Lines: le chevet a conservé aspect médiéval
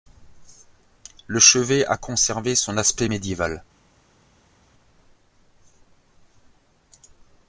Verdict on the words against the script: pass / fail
fail